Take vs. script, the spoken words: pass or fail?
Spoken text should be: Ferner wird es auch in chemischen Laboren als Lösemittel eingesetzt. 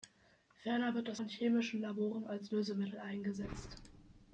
fail